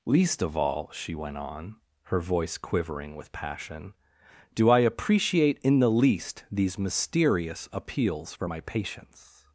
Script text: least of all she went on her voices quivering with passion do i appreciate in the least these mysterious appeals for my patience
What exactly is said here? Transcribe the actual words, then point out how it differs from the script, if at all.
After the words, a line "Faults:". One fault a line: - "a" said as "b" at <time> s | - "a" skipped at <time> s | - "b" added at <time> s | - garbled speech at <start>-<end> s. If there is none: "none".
least of all she went on her voice quivering with passion do i appreciate in the least these mysterious appeals for my patience
Faults:
- "voices" said as "voice" at 2.2 s